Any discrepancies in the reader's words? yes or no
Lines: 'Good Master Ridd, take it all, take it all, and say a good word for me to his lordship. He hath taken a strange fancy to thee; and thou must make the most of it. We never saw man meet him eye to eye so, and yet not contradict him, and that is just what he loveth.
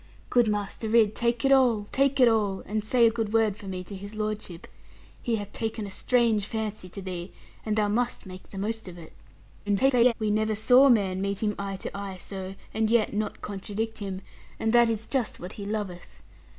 yes